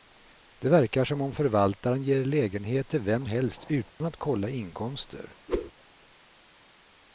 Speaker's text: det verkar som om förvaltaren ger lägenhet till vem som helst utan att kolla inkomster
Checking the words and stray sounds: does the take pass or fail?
fail